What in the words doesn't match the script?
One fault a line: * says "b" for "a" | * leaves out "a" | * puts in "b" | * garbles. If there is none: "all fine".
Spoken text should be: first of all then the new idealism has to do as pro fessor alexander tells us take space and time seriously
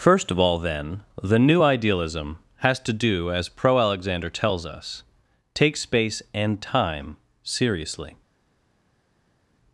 * leaves out "fessor"